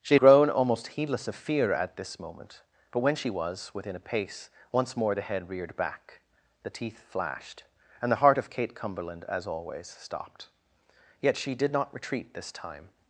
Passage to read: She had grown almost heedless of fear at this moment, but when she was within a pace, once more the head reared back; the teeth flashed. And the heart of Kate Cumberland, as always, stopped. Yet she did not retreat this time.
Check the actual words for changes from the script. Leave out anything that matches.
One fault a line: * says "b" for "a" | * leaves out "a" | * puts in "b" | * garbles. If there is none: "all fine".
* leaves out "had"